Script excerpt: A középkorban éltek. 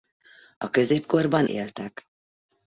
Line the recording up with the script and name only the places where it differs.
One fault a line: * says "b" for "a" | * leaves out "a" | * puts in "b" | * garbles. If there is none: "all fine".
all fine